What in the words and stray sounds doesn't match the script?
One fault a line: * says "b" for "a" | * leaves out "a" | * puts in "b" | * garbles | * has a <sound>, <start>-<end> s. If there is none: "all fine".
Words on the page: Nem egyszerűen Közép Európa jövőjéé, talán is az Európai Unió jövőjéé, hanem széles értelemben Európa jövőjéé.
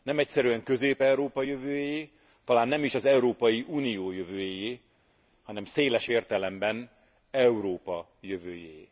* puts in "nem"